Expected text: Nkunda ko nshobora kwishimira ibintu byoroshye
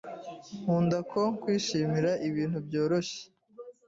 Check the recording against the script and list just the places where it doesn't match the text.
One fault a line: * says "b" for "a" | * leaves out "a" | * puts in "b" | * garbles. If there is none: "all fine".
* leaves out "nshobora"